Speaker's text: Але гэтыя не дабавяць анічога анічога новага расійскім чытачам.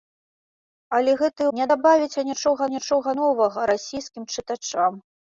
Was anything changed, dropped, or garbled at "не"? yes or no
no